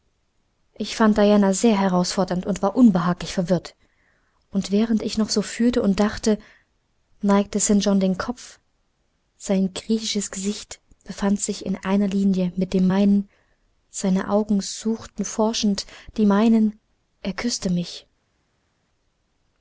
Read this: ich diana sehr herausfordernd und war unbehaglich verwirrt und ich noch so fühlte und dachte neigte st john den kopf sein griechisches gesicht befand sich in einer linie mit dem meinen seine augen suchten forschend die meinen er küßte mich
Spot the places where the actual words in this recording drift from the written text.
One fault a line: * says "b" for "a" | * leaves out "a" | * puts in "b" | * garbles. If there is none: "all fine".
* puts in "fand"
* puts in "während"